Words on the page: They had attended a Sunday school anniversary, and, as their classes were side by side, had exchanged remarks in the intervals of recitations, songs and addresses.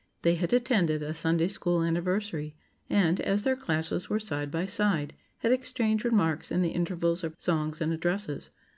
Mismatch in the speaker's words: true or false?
true